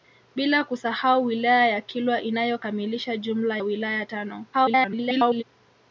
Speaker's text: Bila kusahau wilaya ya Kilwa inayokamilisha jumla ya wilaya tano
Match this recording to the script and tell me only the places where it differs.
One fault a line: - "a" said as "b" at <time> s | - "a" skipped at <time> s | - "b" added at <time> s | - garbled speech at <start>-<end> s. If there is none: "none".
- "ya" skipped at 3.6 s
- garbled speech at 4.5-5.4 s